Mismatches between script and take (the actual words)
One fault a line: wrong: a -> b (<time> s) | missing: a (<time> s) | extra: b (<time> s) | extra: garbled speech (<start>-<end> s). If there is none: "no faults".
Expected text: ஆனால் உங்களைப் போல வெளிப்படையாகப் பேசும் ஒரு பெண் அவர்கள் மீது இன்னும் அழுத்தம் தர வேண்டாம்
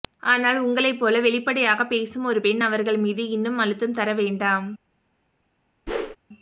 no faults